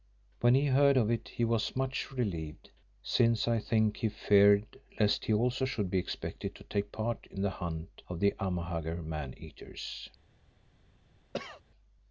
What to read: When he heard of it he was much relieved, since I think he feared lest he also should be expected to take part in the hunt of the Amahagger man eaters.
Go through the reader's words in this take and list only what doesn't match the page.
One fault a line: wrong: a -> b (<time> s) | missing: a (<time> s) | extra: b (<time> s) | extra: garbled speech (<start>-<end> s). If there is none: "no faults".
no faults